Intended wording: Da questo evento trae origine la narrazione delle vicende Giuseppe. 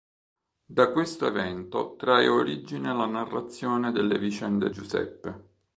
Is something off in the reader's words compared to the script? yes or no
no